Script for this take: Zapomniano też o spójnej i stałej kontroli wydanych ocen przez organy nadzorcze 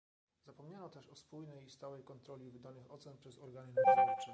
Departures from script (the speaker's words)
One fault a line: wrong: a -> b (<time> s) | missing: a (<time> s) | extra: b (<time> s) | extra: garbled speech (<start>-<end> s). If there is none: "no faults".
no faults